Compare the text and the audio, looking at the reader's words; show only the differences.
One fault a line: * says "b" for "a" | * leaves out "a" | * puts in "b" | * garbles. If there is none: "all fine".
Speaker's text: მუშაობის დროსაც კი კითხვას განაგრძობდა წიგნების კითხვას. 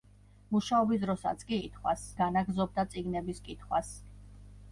all fine